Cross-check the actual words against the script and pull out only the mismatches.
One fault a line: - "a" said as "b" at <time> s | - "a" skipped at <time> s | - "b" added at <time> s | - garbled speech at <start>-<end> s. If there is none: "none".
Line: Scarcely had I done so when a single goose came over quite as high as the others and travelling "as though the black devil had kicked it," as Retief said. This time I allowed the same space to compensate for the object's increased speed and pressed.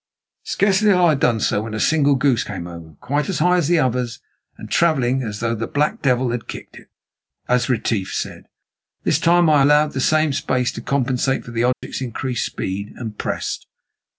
none